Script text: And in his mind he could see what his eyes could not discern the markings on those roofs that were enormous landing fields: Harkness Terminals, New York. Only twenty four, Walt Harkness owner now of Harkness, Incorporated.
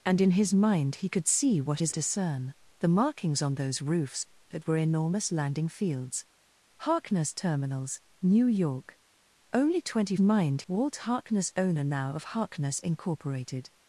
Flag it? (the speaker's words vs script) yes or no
yes